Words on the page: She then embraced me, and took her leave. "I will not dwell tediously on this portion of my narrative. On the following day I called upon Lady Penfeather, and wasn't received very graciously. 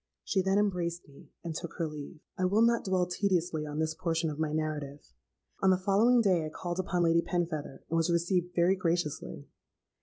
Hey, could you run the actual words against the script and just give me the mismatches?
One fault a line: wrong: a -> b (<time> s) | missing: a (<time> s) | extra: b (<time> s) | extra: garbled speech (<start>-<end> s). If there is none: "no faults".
wrong: wasn't -> was (8.0 s)